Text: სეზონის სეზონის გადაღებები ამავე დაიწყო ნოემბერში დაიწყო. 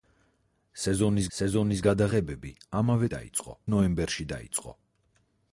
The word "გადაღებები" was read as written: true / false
true